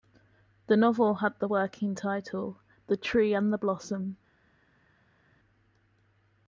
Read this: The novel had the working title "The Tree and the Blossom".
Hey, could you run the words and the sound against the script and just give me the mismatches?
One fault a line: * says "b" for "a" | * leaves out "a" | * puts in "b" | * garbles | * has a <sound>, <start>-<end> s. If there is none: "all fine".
all fine